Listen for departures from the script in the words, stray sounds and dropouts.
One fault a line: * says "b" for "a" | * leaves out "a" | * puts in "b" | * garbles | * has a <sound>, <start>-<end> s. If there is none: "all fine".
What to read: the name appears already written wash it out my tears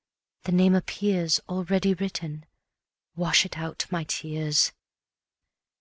all fine